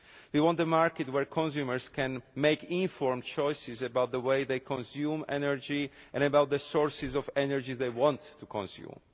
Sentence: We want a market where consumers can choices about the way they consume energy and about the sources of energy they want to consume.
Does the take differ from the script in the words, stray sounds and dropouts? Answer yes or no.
yes